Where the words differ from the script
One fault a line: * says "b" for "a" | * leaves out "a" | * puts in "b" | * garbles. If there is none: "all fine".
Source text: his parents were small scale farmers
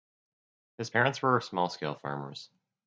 all fine